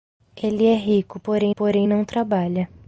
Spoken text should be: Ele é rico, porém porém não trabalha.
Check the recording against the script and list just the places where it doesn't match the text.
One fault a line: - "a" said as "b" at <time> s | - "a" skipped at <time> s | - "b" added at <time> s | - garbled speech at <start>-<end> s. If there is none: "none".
none